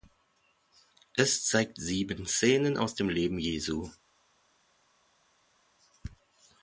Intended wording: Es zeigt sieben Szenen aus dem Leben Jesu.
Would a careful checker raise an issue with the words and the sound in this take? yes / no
no